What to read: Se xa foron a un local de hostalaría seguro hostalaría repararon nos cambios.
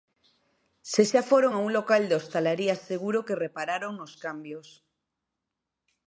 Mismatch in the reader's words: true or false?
true